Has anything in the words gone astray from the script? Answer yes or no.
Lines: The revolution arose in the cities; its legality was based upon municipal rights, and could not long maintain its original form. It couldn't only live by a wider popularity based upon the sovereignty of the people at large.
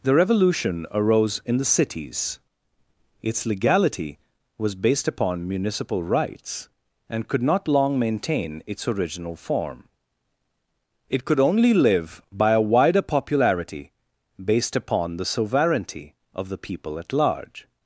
yes